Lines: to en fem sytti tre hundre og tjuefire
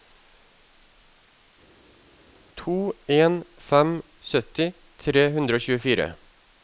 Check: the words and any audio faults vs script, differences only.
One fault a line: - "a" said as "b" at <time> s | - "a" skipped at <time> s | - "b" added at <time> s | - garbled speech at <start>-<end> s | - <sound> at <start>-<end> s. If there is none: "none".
none